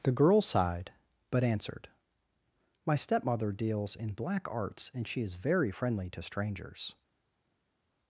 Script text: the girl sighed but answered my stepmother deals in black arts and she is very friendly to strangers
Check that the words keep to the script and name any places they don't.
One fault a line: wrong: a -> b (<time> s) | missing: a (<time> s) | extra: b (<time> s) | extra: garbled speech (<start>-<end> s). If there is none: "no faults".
no faults